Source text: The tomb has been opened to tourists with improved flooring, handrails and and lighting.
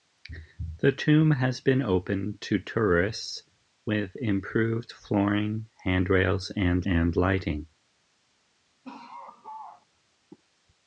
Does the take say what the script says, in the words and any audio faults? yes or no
no